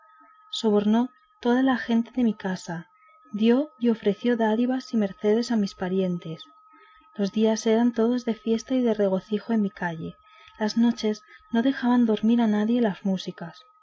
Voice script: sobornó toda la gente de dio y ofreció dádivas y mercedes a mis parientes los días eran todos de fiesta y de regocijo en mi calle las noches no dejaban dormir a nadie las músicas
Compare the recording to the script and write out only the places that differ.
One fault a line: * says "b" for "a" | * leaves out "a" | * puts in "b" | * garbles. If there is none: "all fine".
* puts in "mi casa"